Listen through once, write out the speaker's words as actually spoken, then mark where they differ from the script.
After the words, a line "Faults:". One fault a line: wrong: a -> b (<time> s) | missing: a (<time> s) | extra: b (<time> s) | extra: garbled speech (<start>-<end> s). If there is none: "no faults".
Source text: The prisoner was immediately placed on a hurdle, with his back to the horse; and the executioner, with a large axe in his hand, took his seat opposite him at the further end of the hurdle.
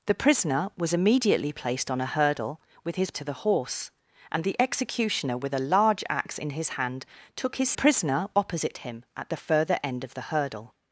The prisoner was immediately placed on a hurdle, with his to the horse; and the executioner, with a large axe in his hand, took his prisoner opposite him at the further end of the hurdle.
Faults:
missing: back (3.1 s)
wrong: seat -> prisoner (7.7 s)